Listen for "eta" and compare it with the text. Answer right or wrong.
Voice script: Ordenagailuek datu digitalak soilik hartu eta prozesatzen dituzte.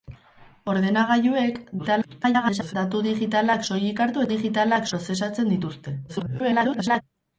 wrong